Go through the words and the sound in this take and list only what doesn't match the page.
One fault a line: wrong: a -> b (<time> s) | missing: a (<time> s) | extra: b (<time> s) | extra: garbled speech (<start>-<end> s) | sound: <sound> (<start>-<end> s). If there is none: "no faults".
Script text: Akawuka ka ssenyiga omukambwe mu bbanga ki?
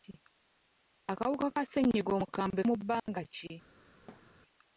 sound: dropout (3.0-3.1 s)
sound: thud (4.1-4.4 s)